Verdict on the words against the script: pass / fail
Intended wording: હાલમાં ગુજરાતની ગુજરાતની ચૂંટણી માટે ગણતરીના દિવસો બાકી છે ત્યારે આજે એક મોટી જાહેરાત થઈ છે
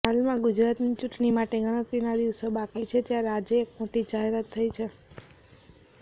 fail